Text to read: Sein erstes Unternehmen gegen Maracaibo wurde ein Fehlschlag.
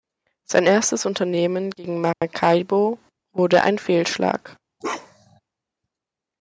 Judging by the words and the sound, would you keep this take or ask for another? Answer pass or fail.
fail